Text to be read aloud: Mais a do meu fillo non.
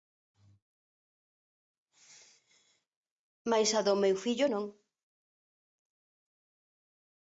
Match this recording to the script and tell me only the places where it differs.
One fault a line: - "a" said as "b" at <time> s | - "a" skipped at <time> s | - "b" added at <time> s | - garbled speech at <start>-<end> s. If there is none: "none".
none